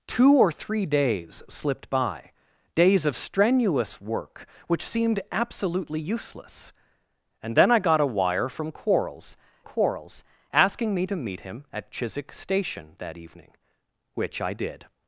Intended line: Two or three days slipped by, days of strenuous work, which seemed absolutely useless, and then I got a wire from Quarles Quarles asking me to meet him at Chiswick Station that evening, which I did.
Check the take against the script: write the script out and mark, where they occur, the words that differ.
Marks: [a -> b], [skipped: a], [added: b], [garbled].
Two or three days slipped by, days of strenuous work, which seemed absolutely useless, and then I got a wire from Quarles Quarles asking me to meet him at Chiswick Station that evening, which I did.